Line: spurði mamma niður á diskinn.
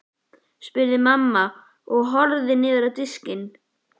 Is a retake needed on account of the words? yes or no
yes